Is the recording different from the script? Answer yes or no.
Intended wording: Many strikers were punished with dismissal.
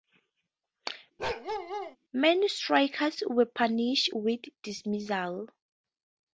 no